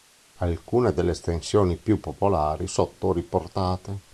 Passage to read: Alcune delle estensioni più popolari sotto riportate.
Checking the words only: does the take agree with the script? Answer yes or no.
yes